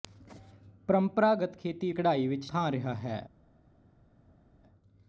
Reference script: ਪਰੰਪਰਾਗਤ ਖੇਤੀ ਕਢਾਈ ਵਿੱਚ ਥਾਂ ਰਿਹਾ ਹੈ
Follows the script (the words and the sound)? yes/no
yes